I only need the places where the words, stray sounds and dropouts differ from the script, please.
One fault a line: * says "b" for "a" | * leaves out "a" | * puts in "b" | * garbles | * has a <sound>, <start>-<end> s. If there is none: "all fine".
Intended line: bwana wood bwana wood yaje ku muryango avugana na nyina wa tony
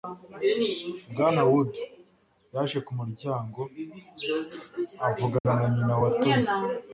* leaves out "bwana wood"
* has a dropout, 5.4-5.5 s